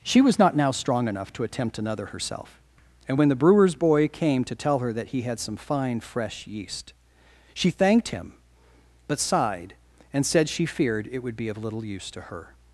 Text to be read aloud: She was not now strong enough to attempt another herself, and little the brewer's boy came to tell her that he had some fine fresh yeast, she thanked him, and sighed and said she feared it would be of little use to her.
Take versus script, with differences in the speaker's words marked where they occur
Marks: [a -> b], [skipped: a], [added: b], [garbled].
She was not now strong enough to attempt another herself, and [little -> when] the brewer's boy came to tell her that he had some fine fresh yeast, she thanked him, [and -> but] sighed and said she feared it would be of little use to her.